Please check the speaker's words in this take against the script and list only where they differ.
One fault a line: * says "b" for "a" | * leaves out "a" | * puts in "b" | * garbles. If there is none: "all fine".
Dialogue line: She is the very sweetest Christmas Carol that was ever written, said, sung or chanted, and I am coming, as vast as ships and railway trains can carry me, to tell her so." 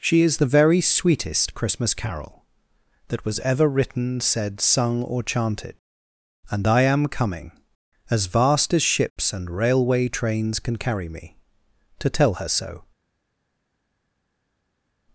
all fine